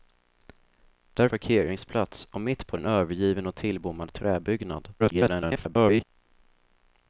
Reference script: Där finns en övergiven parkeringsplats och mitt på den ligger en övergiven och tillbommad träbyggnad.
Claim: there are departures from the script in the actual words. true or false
true